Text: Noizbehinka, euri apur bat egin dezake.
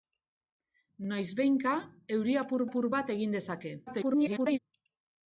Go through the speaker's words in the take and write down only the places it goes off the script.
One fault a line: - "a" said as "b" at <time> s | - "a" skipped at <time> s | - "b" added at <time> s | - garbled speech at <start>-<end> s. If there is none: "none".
- "apur" added at 2.7 s
- garbled speech at 3.9-4.6 s